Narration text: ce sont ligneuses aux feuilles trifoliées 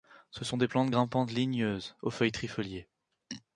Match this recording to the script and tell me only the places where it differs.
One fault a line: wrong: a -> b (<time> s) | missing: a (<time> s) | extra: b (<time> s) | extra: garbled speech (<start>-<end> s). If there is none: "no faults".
extra: des plantes grimpantes (0.6 s)